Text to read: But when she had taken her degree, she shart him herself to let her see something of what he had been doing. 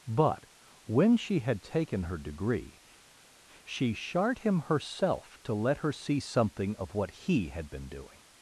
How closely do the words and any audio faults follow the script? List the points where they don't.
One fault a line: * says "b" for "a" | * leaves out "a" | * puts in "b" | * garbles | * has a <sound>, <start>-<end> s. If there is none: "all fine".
all fine